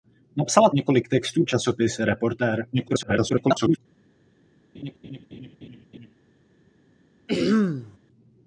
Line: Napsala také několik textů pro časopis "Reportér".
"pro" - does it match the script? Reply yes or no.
no